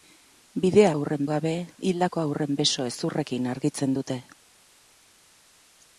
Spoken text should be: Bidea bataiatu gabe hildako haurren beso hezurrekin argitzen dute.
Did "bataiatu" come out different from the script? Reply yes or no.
yes